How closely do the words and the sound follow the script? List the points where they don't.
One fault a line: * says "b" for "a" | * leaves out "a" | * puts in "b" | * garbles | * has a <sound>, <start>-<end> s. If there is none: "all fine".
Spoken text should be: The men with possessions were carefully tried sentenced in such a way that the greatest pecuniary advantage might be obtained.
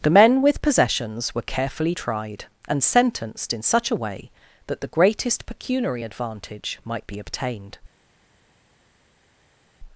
* puts in "and"